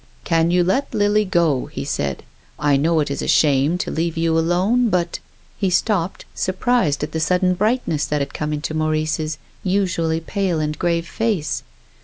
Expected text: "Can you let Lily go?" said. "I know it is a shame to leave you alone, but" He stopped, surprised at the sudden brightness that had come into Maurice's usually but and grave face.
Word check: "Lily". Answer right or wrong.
right